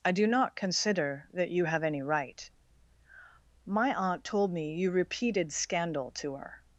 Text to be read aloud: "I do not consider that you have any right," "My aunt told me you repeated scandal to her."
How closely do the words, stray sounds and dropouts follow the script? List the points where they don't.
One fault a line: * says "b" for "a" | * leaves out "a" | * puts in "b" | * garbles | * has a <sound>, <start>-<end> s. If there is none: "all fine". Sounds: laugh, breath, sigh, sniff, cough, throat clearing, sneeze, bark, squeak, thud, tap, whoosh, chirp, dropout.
all fine